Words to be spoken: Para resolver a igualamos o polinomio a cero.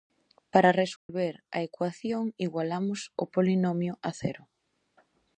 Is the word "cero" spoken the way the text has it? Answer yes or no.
yes